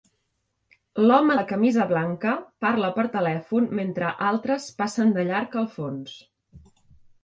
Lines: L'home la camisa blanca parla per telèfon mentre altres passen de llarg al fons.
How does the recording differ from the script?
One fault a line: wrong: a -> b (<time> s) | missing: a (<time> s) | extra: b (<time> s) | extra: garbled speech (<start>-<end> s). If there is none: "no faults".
no faults